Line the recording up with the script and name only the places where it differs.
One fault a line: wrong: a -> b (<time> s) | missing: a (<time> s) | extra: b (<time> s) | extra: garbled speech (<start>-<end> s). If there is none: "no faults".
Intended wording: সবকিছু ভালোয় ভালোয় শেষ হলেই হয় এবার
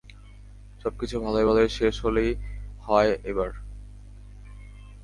no faults